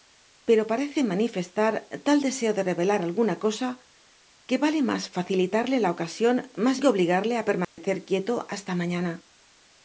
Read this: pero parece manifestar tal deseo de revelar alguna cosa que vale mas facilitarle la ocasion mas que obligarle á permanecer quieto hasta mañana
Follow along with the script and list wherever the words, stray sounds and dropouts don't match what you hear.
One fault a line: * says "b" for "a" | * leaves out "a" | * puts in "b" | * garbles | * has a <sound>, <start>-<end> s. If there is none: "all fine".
* has a dropout, 7.6-7.8 s